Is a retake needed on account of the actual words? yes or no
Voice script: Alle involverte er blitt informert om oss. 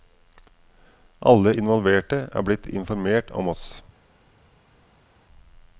no